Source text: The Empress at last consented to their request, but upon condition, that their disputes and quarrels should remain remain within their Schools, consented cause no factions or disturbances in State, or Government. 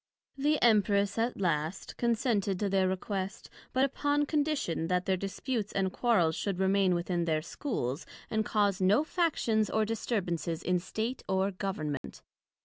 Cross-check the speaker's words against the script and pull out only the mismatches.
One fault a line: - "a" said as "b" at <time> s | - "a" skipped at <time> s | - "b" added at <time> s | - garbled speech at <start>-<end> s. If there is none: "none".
- "remain" skipped at 6.9 s
- "consented" said as "and" at 8.3 s